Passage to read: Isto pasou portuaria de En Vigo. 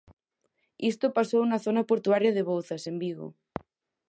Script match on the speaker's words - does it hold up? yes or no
no